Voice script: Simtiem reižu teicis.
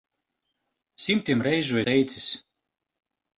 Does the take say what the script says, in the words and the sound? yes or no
yes